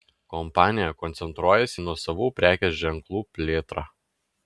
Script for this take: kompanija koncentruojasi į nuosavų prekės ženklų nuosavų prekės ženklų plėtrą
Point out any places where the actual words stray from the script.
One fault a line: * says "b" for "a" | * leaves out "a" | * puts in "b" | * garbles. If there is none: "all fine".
* leaves out "nuosavų prekės ženklų"